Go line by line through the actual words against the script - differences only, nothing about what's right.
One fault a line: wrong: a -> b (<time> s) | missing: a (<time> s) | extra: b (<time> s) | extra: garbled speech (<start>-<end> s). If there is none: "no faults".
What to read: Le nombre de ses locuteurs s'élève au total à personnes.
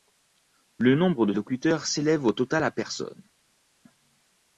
missing: ses (1.3 s)